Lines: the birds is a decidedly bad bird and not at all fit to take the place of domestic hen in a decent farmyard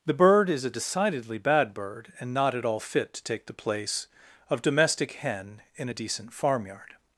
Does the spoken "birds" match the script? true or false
false